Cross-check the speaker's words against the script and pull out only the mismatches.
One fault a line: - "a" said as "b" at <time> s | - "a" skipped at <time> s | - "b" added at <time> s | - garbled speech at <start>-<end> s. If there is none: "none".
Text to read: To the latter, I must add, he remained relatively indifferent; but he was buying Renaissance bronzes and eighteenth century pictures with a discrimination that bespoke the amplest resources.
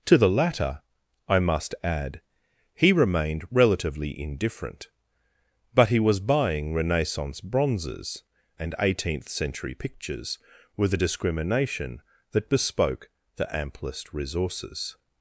none